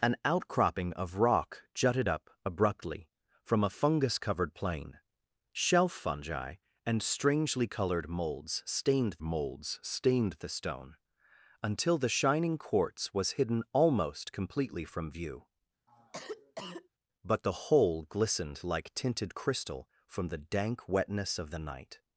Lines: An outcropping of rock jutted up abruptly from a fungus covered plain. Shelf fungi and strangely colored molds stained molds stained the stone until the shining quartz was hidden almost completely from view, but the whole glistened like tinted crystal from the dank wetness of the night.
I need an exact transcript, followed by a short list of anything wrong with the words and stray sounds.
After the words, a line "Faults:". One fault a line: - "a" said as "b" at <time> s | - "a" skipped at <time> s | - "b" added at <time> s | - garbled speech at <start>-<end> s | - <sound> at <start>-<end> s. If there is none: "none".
An outcropping of rock jutted up abruptly from a fungus covered plain. Shelf fungi and strangely colored molds stained molds stained the stone until the shining quartz was hidden almost completely from view, but the whole glistened like tinted crystal from the dank wetness of the night.
Faults:
- cough at 15.9-16.9 s